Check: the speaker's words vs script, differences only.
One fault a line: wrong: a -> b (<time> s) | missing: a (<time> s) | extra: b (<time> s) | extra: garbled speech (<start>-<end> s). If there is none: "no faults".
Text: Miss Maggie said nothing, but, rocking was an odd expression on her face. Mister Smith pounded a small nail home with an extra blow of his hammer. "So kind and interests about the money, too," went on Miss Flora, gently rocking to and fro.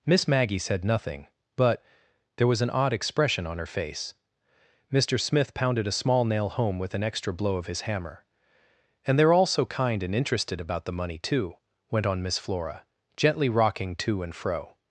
wrong: rocking -> there (2.4 s)
extra: And they're all (9.1 s)
wrong: interests -> interested (10.2 s)